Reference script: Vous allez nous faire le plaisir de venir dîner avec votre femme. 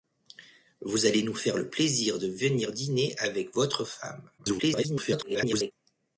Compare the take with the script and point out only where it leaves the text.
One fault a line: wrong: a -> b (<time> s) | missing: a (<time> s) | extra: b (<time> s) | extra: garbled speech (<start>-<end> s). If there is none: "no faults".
extra: garbled speech (4.4-5.7 s)